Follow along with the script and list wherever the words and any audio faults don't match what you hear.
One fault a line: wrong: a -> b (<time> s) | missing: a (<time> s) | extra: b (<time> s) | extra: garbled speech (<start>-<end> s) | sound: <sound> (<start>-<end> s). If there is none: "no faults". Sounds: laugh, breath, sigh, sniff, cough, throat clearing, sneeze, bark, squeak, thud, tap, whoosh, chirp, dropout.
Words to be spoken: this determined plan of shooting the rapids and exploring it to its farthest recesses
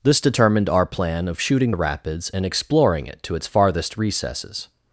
extra: our (0.7 s)